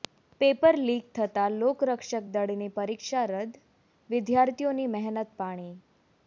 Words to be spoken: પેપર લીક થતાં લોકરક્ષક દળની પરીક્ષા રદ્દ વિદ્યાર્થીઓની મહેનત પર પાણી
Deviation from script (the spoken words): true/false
true